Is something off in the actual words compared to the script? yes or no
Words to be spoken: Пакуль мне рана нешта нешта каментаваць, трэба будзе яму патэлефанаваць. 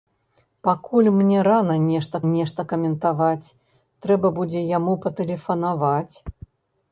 no